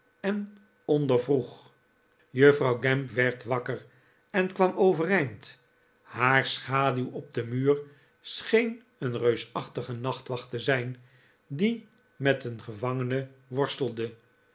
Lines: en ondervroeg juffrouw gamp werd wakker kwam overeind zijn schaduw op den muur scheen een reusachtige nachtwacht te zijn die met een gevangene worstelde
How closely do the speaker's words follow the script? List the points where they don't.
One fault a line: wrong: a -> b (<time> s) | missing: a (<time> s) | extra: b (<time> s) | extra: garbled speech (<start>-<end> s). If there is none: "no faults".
extra: en (4.3 s)
wrong: zijn -> haar (6.0 s)